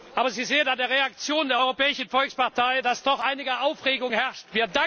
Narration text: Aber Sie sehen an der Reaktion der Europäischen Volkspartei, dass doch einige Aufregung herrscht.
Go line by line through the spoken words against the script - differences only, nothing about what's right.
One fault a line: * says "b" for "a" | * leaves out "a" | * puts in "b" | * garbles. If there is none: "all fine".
all fine